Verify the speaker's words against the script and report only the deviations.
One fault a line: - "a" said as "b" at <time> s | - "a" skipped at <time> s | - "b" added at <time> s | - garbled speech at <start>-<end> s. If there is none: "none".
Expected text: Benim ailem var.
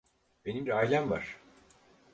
none